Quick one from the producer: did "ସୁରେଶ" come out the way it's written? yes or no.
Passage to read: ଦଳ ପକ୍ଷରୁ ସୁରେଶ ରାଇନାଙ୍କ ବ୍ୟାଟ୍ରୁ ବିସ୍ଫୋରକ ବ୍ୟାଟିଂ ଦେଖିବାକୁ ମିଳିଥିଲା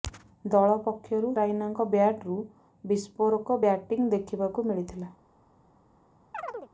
no